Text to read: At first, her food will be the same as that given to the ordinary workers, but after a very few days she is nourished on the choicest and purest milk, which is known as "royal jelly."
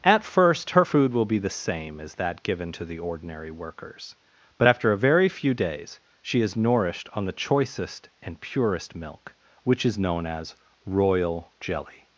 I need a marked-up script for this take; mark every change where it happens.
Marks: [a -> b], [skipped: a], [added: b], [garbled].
At first, her food will be the same as that given to the ordinary workers, but after a very few days she is nourished on the choicest and purest milk, which is known as "royal jelly."